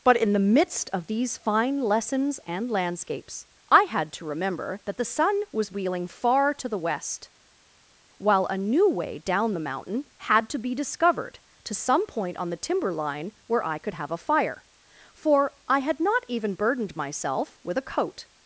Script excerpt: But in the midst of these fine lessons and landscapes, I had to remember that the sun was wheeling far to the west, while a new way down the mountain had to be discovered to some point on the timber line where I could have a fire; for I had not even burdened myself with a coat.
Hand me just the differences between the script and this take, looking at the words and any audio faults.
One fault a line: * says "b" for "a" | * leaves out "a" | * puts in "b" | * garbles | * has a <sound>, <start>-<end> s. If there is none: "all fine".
all fine